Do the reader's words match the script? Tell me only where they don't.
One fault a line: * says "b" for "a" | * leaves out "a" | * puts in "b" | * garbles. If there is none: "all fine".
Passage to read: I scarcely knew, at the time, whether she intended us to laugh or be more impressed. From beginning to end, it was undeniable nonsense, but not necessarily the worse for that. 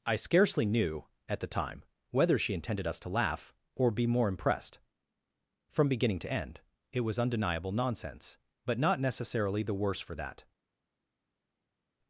all fine